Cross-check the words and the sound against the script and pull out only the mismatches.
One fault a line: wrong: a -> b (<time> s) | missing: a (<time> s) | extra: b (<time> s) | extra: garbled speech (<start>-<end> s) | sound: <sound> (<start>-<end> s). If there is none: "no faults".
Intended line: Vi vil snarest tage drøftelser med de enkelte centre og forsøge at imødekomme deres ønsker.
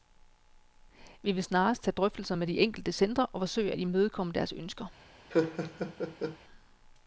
sound: laugh (5.3-6.4 s)